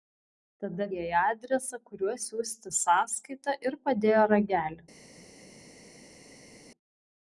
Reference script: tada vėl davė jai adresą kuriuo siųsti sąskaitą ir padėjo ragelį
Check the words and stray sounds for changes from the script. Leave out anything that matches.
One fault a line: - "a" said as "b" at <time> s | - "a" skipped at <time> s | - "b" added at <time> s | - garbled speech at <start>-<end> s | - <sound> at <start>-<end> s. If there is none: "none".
- "vėl davė" skipped at 0.8 s